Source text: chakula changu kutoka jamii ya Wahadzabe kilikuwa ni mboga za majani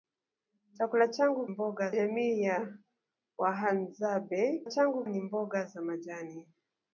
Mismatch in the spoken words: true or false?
true